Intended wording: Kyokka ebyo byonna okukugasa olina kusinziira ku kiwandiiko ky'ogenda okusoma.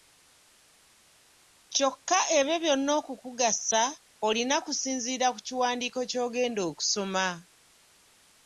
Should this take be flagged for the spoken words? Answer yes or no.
no